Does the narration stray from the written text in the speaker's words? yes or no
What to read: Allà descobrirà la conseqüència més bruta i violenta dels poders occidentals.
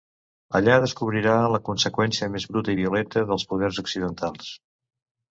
no